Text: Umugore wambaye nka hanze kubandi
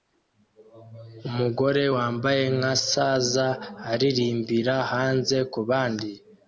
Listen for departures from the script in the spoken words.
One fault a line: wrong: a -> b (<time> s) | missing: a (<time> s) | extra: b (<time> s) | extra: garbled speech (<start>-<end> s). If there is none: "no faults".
extra: saza aririmbira (2.9 s)